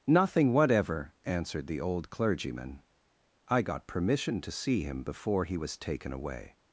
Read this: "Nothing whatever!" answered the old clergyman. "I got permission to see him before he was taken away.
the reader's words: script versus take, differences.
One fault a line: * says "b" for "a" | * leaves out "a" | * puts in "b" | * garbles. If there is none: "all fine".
all fine